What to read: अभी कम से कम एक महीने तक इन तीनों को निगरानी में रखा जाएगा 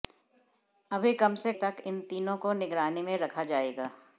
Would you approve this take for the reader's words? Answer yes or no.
no